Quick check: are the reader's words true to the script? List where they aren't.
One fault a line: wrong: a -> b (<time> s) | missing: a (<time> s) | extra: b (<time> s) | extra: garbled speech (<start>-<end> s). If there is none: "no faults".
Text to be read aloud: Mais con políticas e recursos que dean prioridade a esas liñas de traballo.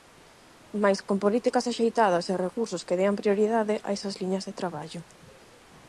extra: axeitadas (1.7 s)